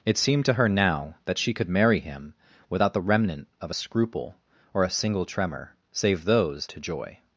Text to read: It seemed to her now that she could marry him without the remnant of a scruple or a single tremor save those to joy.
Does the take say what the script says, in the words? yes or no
yes